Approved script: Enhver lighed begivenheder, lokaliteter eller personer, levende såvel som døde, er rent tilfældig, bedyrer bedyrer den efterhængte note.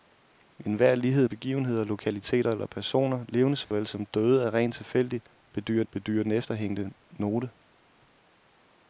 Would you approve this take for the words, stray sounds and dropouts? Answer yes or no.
no